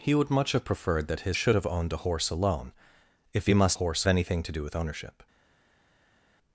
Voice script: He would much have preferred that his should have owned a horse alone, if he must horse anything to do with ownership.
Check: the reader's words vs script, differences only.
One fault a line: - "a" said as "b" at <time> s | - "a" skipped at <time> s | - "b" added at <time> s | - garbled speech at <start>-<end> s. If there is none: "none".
none